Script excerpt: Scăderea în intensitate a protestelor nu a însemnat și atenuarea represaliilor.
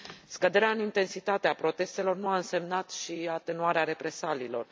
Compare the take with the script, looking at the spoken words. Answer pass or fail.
pass